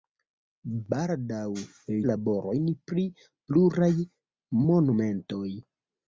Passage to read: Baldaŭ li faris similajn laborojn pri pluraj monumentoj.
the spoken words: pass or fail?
fail